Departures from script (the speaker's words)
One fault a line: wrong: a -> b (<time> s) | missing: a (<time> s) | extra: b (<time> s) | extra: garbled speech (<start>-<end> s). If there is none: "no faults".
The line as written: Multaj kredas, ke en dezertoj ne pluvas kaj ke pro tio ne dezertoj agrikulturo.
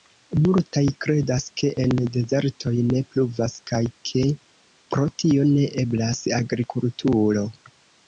wrong: dezertoj -> eblas (5.8 s)